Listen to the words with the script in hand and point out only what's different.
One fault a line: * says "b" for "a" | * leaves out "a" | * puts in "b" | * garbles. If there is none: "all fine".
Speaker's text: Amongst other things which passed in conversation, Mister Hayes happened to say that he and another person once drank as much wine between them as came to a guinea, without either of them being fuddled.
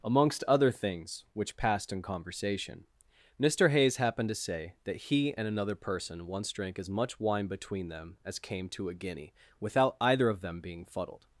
all fine